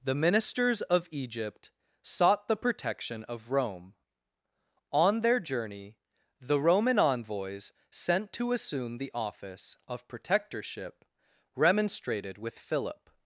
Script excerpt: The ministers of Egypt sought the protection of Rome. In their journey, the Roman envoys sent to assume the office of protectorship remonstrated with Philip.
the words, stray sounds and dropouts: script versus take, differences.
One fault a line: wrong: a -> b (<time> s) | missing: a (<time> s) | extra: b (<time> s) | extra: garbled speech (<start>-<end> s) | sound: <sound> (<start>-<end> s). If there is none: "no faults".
wrong: In -> On (4.9 s)